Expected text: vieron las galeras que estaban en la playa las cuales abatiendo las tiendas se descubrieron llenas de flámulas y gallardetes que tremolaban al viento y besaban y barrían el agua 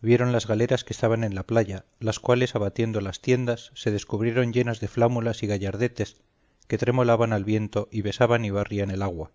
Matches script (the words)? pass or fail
pass